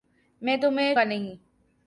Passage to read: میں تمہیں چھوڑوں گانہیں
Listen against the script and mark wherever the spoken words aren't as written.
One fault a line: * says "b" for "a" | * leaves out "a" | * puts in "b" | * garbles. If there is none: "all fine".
* leaves out "چھوڑوں"